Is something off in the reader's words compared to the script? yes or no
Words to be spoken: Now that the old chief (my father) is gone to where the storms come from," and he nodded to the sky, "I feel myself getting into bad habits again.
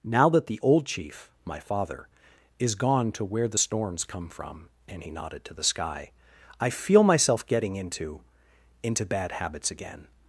yes